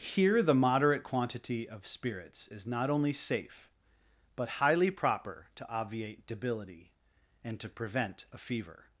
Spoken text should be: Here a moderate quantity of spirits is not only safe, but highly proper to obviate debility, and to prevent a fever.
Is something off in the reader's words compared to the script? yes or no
yes